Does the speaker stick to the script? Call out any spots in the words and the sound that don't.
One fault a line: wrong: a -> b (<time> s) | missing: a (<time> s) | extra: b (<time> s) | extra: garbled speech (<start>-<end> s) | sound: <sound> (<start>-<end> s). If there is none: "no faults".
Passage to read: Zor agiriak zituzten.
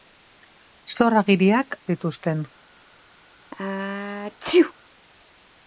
sound: sneeze (3.5-4.7 s)